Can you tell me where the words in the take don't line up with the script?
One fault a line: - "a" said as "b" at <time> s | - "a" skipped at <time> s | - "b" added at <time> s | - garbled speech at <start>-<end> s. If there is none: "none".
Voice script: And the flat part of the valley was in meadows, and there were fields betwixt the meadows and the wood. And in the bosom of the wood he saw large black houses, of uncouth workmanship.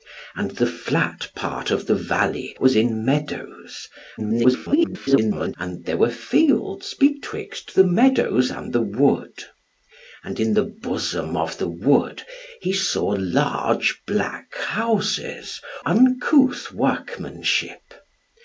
- garbled speech at 4.2-5.6 s
- "of" skipped at 15.6 s